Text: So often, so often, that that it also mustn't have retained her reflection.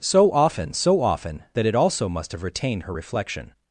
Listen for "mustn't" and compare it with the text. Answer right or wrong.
wrong